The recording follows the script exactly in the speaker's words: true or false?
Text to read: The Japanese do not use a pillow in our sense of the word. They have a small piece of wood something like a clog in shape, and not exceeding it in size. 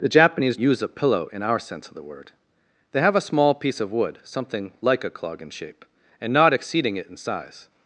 false